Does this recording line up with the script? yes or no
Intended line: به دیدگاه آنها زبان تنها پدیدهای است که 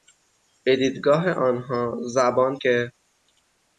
no